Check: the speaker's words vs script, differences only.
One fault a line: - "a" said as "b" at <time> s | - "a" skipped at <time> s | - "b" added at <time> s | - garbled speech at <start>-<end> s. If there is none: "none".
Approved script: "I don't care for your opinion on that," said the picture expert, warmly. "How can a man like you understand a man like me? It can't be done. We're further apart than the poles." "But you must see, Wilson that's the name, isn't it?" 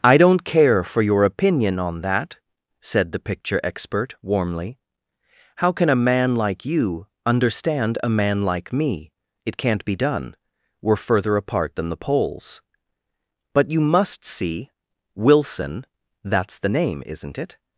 none